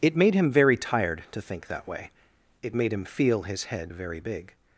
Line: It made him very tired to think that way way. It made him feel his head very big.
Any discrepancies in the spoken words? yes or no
yes